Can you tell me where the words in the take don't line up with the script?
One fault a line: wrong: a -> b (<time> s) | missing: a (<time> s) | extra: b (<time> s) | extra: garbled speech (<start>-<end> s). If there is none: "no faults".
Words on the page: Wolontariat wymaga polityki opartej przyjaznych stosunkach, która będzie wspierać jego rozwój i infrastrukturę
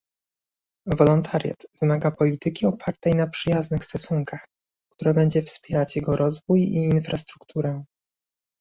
extra: na (3.1 s)